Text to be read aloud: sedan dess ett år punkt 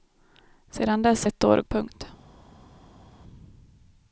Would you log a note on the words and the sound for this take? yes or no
no